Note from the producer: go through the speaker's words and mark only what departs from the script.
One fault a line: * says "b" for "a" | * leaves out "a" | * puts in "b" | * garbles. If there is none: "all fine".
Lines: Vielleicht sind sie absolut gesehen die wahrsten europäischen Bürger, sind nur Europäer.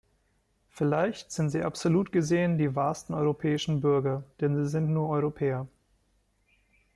* puts in "denn sie"